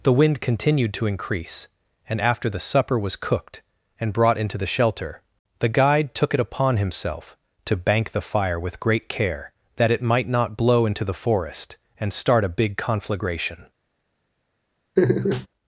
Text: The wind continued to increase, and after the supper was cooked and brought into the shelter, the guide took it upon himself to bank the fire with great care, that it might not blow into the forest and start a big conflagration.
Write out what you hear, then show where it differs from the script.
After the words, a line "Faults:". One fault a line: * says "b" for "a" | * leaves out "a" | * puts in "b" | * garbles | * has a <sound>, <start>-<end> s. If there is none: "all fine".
The wind continued to increase, and after the supper was cooked and brought into the shelter, the guide took it upon himself to bank the fire with great care, that it might not blow into the forest and start a big conflagration.
Faults:
* has a laugh, 15.0-15.5 s